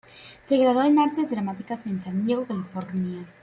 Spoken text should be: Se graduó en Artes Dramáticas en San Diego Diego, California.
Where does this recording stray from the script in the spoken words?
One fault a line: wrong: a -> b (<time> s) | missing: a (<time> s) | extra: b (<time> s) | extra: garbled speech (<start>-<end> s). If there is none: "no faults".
missing: Diego (2.5 s)